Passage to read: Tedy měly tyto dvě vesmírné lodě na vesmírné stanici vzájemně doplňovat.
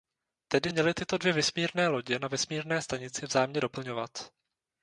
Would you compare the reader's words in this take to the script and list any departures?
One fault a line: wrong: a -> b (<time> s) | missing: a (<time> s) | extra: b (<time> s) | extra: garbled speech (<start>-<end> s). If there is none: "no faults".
no faults